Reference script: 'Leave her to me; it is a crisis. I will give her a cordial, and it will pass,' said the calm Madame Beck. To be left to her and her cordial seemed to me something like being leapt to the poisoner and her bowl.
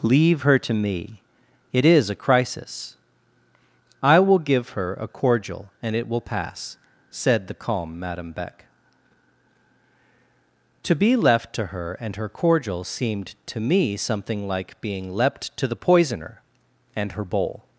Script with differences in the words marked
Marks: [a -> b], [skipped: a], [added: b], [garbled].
'Leave her to me; it is a crisis. I will give her a cordial, and it will pass,' said the calm Madame Beck. To be left to her and her cordial seemed to me something like being leapt to the poisoner and her bowl.